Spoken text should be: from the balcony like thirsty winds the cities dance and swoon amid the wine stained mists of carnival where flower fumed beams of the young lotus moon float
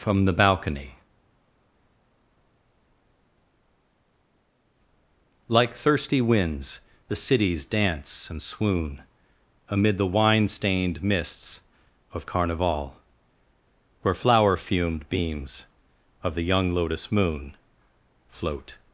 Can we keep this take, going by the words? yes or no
yes